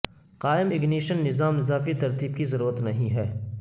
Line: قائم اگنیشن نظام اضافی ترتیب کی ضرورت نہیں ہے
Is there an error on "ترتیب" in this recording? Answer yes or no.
no